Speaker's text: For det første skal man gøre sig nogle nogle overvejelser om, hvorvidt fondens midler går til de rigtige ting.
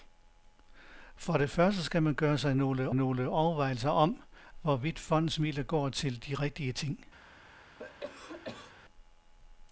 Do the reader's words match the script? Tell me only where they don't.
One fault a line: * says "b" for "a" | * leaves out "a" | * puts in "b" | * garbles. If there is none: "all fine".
all fine